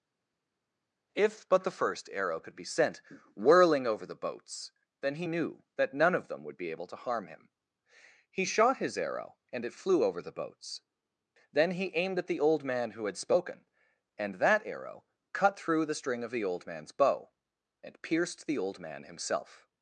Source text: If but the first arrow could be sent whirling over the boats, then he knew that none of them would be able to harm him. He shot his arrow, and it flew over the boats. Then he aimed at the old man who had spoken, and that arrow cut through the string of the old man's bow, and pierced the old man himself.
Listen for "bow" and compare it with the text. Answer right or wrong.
right